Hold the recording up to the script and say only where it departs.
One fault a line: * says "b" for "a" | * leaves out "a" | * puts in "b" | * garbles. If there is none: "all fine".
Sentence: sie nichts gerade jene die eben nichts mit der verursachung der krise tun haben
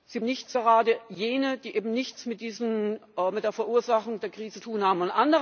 all fine